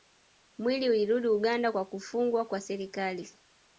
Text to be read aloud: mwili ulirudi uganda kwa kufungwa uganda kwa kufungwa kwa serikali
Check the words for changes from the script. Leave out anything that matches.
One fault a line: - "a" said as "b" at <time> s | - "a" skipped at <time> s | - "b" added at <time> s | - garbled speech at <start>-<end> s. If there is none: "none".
- "uganda kwa kufungwa" skipped at 2.4 s